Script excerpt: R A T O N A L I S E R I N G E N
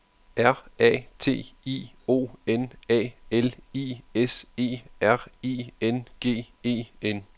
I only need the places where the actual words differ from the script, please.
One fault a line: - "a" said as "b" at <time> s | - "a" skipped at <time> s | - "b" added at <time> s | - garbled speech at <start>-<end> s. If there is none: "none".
- "I" added at 1.7 s